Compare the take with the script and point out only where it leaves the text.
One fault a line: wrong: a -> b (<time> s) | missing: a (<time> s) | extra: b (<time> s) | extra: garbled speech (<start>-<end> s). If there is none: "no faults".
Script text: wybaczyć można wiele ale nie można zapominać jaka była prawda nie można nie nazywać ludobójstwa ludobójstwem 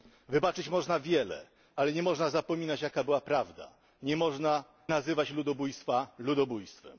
missing: nie (4.6 s)